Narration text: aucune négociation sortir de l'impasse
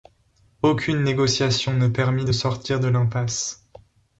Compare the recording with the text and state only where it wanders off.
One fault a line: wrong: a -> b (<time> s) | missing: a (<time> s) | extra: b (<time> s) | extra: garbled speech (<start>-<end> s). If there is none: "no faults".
extra: ne permit de (1.7 s)